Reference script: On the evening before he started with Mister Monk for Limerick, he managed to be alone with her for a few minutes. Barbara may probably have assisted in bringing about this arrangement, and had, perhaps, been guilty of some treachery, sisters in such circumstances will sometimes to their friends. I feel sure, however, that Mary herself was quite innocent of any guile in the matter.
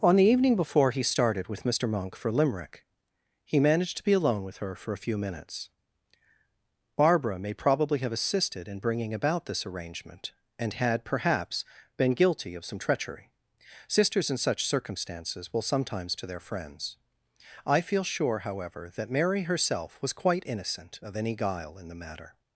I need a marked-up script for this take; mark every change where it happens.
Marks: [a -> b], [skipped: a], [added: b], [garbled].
On the evening before he started with Mister Monk for Limerick, he managed to be alone with her for a few minutes. Barbara may probably have assisted in bringing about this arrangement, and had, perhaps, been guilty of some treachery, sisters in such circumstances will sometimes to their friends. I feel sure, however, that Mary herself was quite innocent of any guile in the matter.